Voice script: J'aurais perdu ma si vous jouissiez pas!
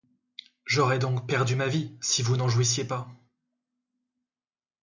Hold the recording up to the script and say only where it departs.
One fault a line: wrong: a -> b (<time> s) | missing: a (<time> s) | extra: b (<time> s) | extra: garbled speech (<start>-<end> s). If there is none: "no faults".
extra: donc (1.0 s)
extra: vie (1.7 s)
extra: n'en (2.4 s)